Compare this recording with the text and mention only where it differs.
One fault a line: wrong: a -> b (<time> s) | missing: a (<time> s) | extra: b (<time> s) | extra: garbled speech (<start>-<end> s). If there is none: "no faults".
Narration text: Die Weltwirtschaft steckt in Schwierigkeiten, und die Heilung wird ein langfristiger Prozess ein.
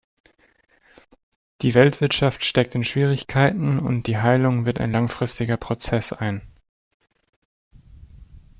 no faults